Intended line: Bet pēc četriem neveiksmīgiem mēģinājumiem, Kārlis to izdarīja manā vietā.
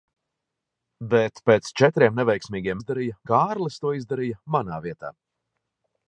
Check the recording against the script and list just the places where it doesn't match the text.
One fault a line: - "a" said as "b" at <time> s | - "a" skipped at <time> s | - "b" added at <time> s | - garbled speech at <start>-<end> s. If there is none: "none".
- "mēģinājumiem" said as "izdarīja" at 2.8 s